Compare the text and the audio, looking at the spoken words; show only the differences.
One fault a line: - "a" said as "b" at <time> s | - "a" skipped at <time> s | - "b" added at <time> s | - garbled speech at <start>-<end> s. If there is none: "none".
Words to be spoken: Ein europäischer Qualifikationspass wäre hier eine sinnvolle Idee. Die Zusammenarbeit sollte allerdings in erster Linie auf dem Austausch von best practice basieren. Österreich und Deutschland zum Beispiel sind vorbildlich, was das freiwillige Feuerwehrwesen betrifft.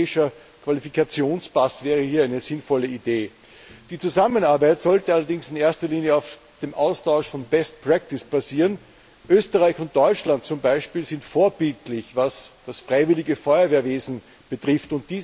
none